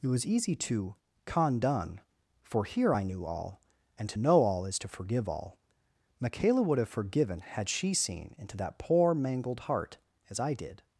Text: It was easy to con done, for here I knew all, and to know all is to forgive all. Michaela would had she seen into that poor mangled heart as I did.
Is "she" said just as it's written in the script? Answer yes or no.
yes